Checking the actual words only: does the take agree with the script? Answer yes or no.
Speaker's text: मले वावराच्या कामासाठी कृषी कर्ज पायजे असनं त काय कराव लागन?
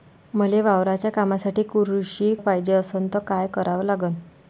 no